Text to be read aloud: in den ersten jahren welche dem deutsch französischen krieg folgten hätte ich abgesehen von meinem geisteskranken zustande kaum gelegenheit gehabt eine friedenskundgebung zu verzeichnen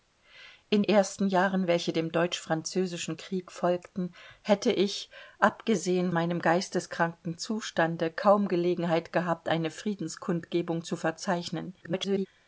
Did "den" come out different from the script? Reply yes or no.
yes